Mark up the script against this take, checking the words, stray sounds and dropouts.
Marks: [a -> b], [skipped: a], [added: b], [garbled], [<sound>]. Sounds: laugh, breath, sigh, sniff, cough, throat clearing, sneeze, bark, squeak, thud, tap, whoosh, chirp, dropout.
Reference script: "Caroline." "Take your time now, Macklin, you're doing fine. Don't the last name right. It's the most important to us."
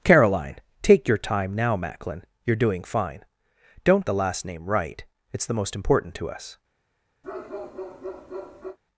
"Caroline." "Take your time now, Macklin, you're doing fine. Don't the last name right. It's the most important to us." [bark]